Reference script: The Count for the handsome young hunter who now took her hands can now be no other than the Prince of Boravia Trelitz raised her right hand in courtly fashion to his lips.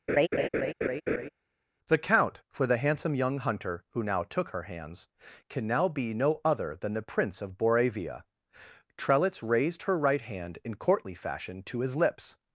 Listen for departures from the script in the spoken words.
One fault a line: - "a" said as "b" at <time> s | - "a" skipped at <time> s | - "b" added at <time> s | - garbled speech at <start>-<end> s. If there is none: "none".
none